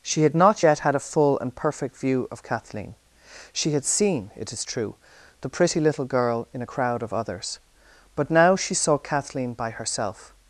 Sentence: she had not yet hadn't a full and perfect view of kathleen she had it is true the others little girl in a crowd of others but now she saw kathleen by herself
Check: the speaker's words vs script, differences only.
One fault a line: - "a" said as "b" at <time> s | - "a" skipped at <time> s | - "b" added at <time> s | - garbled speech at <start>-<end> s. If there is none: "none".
- "hadn't" said as "had" at 0.8 s
- "seen" added at 3.8 s
- "others" said as "pretty" at 5.5 s